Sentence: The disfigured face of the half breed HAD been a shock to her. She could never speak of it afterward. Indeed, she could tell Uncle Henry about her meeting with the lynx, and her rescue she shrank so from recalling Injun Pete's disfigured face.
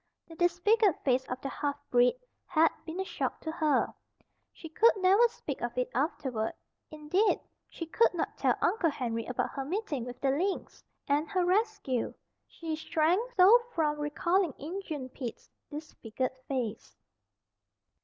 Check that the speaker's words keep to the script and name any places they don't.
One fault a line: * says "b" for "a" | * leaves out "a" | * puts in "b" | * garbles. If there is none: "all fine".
* puts in "not"